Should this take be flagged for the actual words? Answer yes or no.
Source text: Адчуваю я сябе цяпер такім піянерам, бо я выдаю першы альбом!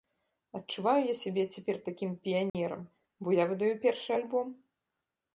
no